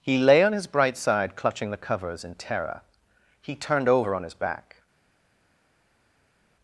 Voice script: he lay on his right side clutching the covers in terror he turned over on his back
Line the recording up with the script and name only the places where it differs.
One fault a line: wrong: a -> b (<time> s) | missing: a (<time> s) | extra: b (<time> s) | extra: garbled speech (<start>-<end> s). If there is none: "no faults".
wrong: right -> bright (0.7 s)